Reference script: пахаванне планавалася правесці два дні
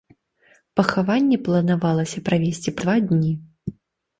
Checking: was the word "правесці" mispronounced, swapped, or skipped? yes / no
no